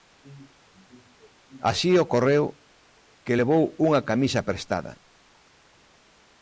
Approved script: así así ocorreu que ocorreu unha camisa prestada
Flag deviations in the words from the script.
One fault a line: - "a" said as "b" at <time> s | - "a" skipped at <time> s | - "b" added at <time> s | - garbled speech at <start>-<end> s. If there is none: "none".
- "así" skipped at 2.0 s
- "ocorreu" said as "levou" at 3.4 s